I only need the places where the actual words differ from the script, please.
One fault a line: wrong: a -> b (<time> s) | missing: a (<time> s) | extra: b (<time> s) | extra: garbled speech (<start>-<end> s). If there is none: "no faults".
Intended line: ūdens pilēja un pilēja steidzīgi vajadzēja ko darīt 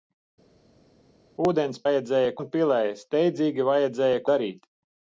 wrong: pilēja -> vajadzēja (1.9 s)
missing: ko (4.3 s)